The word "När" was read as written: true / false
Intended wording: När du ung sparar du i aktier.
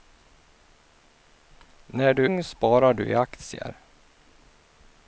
true